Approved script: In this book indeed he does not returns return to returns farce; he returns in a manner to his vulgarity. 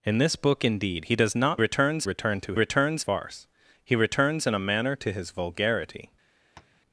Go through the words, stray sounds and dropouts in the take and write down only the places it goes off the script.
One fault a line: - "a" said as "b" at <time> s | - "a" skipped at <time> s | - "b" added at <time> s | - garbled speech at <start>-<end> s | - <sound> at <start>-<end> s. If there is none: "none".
- tap at 6.6-6.8 s